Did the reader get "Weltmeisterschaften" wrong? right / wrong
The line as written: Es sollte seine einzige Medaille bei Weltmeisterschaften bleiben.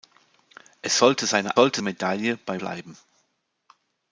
wrong